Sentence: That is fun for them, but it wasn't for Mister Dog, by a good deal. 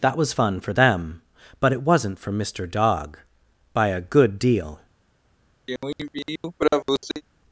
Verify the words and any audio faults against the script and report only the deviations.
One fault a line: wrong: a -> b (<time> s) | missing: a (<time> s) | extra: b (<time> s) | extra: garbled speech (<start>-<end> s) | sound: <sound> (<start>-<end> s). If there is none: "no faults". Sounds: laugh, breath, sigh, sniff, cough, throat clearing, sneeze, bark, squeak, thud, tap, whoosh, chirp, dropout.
wrong: is -> was (0.2 s)
sound: throat clearing (5.7-7.2 s)